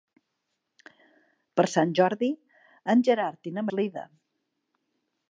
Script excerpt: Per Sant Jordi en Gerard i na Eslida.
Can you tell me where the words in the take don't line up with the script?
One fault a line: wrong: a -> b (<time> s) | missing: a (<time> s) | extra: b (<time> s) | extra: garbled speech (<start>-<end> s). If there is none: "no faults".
no faults